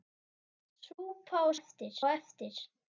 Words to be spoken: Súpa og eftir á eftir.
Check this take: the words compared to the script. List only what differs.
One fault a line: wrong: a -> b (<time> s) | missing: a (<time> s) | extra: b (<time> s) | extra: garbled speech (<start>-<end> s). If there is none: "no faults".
no faults